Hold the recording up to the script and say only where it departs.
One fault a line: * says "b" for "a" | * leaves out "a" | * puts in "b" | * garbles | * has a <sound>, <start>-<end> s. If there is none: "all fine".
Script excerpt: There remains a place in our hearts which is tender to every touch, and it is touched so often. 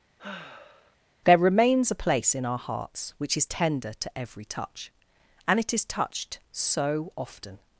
* has a sigh, 0.2-1.0 s